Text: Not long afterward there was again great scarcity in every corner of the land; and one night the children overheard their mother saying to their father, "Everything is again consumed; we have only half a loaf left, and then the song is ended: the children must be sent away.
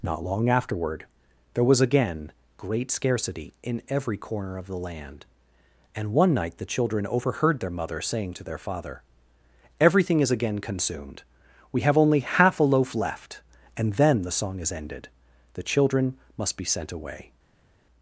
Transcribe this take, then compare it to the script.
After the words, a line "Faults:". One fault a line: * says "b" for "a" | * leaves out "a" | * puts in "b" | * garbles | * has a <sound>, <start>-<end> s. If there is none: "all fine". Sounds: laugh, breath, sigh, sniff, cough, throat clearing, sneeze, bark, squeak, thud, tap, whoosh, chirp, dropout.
Not long afterward there was again great scarcity in every corner of the land; and one night the children overheard their mother saying to their father, "Everything is again consumed; we have only half a loaf left, and then the song is ended: the children must be sent away.
Faults:
all fine